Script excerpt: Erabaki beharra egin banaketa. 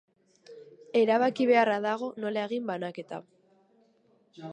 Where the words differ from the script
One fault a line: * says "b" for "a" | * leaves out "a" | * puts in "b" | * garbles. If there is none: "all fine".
* puts in "dago nola"